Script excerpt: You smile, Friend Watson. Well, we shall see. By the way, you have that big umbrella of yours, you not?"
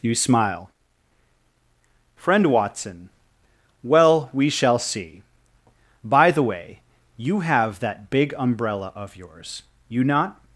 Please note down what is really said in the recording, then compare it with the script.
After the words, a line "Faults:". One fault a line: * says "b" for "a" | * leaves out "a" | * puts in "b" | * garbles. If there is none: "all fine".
You smile, Friend Watson. Well, we shall see. By the way, you have that big umbrella of yours, you not?"
Faults:
all fine